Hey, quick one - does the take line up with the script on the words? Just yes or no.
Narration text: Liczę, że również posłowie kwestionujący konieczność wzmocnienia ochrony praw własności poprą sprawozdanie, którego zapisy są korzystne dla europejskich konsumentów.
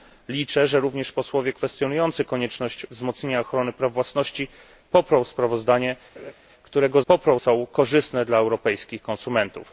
no